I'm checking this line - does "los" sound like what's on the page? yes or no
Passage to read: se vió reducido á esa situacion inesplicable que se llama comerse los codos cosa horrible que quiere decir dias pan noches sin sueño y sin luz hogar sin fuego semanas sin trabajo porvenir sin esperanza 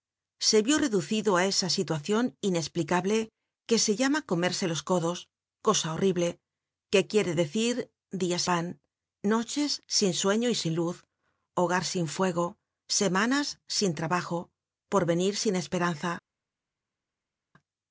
yes